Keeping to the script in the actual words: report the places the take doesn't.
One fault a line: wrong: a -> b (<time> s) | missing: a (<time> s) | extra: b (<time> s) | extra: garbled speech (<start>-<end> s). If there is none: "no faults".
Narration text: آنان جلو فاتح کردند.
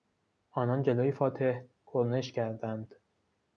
extra: کرنش (1.9 s)